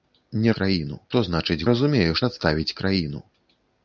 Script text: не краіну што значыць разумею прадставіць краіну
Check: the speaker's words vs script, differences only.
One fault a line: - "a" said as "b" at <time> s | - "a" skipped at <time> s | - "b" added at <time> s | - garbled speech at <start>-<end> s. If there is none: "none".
none